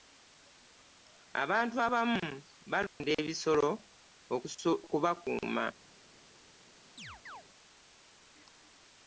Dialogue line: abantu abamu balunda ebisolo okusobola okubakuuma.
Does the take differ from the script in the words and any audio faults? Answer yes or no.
yes